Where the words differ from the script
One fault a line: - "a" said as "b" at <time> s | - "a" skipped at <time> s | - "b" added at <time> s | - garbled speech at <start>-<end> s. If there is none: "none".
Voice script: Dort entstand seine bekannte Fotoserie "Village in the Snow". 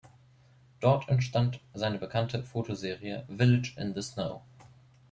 none